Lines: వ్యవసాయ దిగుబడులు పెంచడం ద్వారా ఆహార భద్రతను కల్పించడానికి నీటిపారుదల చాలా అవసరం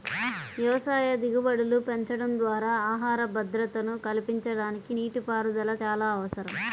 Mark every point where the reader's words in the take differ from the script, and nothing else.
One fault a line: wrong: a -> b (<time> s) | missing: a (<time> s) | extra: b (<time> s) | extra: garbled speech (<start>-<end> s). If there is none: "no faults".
no faults